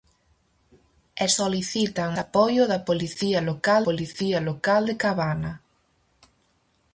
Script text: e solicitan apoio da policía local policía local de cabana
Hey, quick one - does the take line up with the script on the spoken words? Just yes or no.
yes